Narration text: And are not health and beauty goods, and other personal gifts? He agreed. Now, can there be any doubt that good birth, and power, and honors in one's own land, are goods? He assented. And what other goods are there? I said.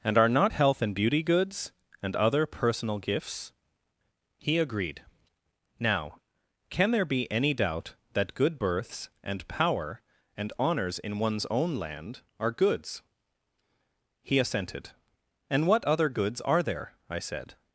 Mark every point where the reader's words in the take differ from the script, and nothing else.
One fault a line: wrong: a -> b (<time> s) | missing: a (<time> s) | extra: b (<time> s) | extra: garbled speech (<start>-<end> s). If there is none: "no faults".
wrong: birth -> births (8.6 s)